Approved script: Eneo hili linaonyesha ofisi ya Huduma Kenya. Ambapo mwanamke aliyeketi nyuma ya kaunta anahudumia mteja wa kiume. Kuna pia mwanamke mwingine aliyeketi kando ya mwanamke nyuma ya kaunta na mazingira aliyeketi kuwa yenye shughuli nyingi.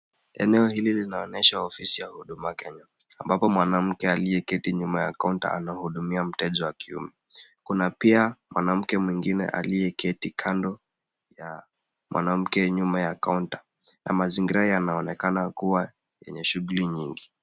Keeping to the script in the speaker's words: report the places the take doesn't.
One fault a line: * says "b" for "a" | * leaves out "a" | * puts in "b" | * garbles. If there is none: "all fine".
* says "yanaonekana" for "aliyeketi"